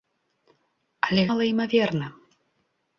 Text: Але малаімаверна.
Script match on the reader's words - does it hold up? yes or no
yes